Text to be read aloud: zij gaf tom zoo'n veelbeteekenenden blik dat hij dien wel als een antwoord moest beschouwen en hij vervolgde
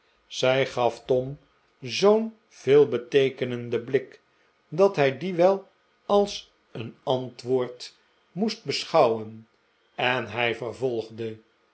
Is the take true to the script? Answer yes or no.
yes